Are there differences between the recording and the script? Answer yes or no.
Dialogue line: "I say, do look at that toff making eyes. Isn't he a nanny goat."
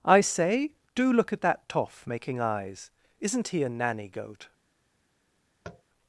no